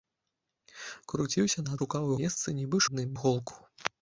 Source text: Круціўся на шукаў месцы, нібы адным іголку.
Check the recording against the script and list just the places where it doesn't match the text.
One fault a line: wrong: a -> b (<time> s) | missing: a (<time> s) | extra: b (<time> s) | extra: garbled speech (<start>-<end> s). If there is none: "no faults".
no faults